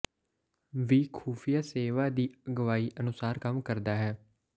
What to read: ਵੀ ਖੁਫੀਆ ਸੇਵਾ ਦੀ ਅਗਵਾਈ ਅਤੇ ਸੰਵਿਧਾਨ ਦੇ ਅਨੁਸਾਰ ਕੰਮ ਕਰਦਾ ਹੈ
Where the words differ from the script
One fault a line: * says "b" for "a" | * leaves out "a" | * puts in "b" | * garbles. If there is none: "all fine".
* leaves out "ਅਤੇ ਸੰਵਿਧਾਨ ਦੇ"